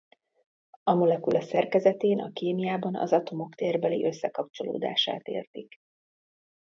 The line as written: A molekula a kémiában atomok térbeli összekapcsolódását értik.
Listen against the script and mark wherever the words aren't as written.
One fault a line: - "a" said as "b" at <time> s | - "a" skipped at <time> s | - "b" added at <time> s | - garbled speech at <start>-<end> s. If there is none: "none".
- "szerkezetén" added at 1.4 s
- "az" added at 3.0 s